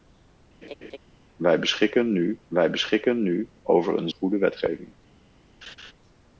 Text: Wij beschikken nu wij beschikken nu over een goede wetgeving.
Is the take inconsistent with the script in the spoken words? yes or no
no